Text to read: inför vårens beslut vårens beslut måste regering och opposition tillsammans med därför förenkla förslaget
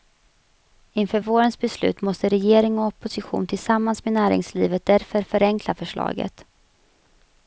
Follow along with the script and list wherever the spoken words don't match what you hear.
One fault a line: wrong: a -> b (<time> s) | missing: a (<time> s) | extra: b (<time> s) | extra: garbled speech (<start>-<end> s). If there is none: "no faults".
missing: vårens beslut (2.0 s)
extra: näringslivet (4.1 s)